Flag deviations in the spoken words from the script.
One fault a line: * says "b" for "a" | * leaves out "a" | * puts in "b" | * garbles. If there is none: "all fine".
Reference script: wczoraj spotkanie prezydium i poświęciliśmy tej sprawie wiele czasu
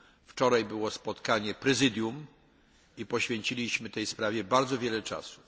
* puts in "było"
* puts in "bardzo"